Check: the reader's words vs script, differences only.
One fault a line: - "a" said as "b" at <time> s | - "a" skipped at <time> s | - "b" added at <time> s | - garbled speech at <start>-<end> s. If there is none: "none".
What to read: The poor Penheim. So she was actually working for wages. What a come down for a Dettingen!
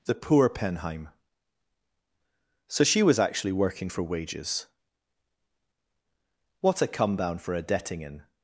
none